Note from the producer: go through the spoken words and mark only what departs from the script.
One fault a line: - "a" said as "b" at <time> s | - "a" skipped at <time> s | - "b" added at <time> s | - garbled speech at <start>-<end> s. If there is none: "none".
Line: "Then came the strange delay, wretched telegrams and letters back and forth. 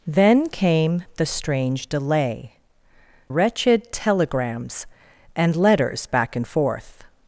none